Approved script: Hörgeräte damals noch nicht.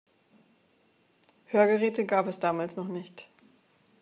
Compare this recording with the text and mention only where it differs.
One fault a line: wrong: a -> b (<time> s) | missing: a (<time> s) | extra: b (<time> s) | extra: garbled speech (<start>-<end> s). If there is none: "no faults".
extra: gab es (2.0 s)